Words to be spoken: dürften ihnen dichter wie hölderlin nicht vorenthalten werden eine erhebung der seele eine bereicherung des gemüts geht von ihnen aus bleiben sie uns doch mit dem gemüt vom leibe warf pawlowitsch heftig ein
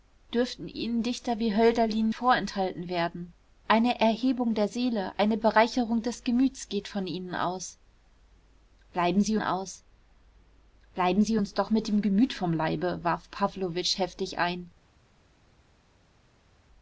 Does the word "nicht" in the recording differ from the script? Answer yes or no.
yes